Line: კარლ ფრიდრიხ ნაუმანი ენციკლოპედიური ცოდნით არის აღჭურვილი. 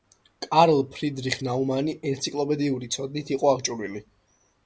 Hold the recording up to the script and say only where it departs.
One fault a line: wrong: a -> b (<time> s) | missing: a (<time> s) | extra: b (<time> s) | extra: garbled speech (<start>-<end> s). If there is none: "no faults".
wrong: არის -> იყო (3.4 s)